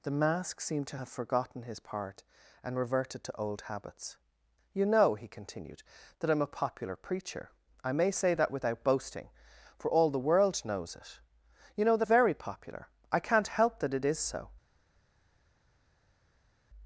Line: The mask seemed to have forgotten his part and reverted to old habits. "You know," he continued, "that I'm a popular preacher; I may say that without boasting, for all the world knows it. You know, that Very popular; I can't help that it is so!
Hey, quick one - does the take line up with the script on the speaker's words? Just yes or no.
yes